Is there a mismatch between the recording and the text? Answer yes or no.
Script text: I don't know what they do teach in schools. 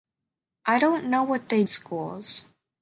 yes